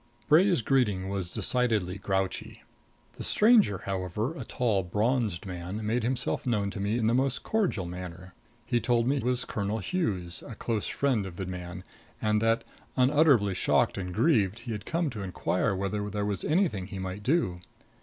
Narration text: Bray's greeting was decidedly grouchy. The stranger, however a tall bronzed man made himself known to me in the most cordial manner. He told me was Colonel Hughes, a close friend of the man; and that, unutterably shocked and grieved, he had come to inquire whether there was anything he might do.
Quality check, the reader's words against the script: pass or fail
pass